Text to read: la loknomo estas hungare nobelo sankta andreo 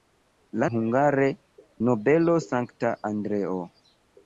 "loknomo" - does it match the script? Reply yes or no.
no